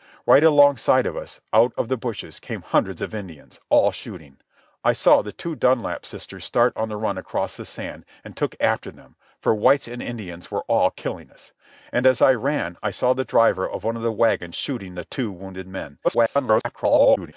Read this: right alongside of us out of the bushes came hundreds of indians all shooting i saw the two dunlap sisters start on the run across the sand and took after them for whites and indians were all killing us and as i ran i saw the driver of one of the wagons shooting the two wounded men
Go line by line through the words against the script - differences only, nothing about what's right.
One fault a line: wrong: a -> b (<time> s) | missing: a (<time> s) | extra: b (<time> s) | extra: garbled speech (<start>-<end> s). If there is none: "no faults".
extra: garbled speech (16.0-17.3 s)